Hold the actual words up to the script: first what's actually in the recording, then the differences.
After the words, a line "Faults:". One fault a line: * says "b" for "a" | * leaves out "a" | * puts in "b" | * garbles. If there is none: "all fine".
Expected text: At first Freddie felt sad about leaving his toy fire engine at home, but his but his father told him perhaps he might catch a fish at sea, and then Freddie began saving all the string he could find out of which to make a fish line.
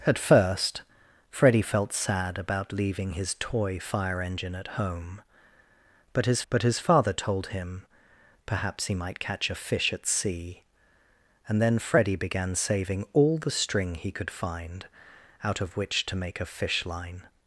At first Freddie felt sad about leaving his toy fire engine at home, but his but his father told him perhaps he might catch a fish at sea, and then Freddie began saving all the string he could find out of which to make a fish line.
Faults:
all fine